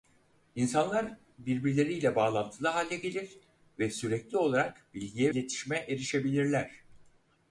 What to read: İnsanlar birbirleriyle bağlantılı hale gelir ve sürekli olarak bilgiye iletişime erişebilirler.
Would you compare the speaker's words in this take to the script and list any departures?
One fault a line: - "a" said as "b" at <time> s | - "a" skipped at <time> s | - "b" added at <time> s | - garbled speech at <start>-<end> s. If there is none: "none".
none